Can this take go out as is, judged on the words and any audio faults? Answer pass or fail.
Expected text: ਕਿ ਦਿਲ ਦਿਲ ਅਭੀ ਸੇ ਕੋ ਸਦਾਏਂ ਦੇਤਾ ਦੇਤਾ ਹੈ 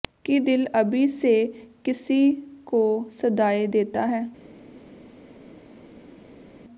fail